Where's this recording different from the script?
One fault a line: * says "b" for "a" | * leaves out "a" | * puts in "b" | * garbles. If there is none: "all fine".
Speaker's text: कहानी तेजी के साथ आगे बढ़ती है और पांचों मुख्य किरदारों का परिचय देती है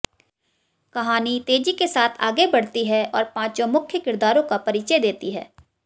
all fine